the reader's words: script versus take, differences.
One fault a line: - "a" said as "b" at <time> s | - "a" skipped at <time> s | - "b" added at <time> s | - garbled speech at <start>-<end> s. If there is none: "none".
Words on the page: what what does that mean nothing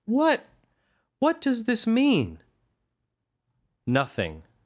- "that" said as "this" at 1.6 s